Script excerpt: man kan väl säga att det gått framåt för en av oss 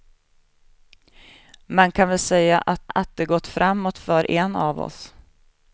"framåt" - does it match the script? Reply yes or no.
yes